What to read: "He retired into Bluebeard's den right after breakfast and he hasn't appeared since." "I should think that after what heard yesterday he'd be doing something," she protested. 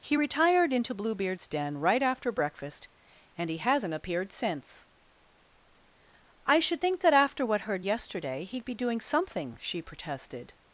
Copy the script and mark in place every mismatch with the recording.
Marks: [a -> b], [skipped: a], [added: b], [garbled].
"He retired into Bluebeard's den right after breakfast and he hasn't appeared since." "I should think that after what heard yesterday he'd be doing something," she protested.